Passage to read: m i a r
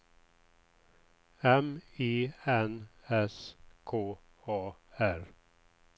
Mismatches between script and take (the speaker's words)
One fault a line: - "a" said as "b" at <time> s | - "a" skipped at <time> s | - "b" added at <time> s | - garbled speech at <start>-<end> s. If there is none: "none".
- "n s k" added at 2.5 s